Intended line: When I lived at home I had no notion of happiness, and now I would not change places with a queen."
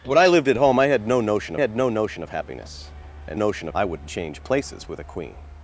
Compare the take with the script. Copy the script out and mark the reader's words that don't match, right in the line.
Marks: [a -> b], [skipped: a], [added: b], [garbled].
When I lived at home I had no notion [added: had no notion] of happiness, and [now -> notion] I would [skipped: not] change places with a queen."